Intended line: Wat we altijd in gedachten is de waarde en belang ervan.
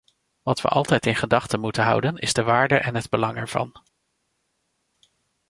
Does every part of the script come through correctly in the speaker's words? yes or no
no